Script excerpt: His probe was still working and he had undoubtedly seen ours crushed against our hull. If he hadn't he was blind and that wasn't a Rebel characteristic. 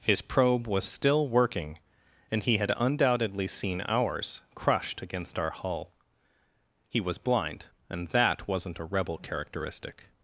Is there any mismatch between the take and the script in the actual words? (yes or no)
yes